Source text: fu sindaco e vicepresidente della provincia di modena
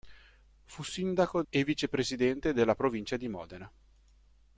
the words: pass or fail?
pass